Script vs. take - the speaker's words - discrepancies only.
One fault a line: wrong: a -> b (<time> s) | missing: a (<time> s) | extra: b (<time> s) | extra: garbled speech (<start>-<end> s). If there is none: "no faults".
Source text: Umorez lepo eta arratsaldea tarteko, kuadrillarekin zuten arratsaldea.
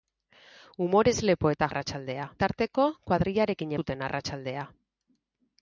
no faults